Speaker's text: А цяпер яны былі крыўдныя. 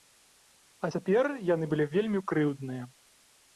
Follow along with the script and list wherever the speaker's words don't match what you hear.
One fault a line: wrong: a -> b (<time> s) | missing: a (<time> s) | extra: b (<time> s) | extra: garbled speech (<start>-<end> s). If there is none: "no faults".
extra: вельмі (2.0 s)